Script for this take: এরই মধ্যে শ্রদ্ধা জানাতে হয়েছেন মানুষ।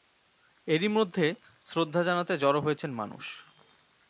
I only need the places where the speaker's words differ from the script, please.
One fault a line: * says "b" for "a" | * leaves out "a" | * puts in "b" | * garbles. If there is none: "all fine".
* puts in "জড়ো"